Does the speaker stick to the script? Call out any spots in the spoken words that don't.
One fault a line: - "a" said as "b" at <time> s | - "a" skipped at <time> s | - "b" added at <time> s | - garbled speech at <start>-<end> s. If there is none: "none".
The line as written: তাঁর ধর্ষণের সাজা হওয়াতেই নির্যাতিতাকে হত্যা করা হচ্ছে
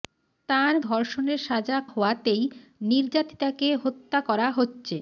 none